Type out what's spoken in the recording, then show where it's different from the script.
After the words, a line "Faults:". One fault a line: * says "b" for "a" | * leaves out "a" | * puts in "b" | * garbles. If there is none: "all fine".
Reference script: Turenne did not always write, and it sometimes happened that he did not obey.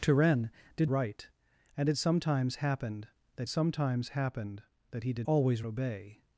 Turenne did write, and it sometimes happened that sometimes happened that he did always obey.
Faults:
* leaves out "not always"
* puts in "sometimes happened that"
* says "always" for "not"